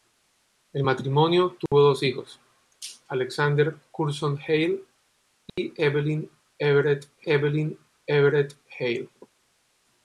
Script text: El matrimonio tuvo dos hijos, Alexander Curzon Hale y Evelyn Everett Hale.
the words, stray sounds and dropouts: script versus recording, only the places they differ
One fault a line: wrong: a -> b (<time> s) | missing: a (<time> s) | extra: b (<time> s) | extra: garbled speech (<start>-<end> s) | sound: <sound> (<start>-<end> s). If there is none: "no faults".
sound: dropout (1.7-1.7 s)
sound: dropout (5.5-5.6 s)
extra: Evelyn Everett (7.2 s)